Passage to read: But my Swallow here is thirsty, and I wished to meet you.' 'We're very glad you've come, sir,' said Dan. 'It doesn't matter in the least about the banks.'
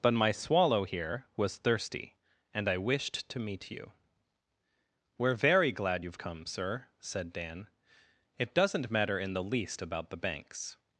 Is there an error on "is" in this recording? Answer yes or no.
yes